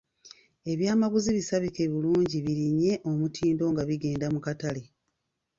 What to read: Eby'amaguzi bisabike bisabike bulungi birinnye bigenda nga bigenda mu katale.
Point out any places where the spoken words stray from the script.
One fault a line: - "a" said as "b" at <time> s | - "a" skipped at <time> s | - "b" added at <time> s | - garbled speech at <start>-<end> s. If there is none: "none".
- "bisabike" skipped at 1.8 s
- "bigenda" said as "omutindo" at 3.1 s